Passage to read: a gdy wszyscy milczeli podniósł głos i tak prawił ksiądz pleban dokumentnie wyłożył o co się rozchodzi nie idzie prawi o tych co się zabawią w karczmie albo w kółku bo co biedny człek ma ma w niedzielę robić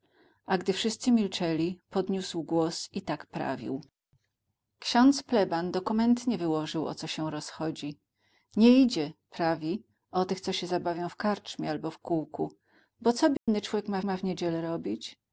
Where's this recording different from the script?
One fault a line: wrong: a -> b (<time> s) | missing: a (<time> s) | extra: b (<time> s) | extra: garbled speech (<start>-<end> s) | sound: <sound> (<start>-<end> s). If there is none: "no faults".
sound: dropout (13.4-13.5 s)